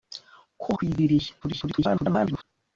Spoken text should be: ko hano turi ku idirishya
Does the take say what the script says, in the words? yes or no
no